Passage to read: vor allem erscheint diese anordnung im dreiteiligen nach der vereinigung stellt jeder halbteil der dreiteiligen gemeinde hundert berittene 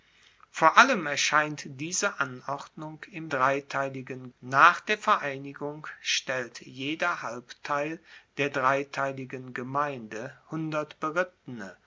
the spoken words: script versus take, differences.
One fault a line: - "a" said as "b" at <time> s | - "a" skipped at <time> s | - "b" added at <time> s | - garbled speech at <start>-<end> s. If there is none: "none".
none